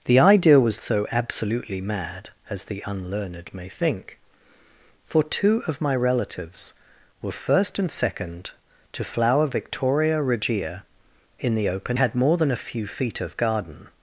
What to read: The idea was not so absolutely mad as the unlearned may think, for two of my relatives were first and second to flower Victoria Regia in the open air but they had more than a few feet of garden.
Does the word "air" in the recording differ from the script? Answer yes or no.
yes